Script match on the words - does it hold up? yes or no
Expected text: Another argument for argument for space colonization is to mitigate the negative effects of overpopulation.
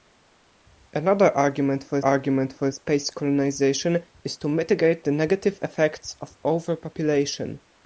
yes